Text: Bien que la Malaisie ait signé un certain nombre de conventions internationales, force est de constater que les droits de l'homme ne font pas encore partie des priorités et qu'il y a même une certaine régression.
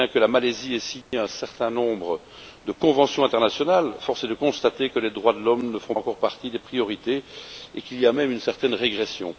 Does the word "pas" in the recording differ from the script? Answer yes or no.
yes